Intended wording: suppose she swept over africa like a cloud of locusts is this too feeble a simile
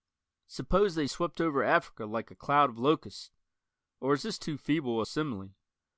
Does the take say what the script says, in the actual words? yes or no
no